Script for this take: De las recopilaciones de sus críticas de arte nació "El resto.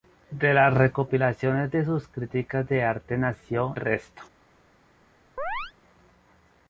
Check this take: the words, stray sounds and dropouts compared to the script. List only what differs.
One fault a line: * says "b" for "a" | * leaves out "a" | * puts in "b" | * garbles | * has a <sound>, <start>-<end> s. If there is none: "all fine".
* leaves out "El"
* has a chirp, 5.4-5.7 s